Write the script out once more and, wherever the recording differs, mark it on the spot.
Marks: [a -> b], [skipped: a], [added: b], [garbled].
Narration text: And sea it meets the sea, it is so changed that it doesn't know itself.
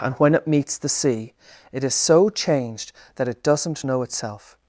And [sea -> when] it meets the sea, it is so changed that it doesn't know itself.